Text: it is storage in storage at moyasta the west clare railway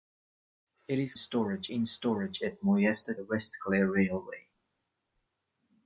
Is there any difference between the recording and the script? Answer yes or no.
no